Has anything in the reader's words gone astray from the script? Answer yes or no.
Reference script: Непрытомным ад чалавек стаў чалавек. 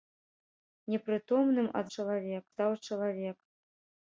no